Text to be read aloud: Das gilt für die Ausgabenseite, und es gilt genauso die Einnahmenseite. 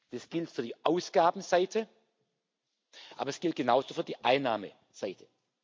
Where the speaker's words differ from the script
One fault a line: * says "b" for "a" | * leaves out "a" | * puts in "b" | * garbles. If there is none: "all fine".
* says "aber" for "und"
* puts in "für"